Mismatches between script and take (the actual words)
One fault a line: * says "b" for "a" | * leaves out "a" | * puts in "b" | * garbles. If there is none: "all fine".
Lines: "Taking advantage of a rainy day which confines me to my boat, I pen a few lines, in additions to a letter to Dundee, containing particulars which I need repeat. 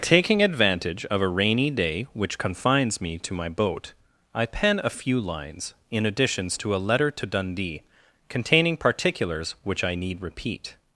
all fine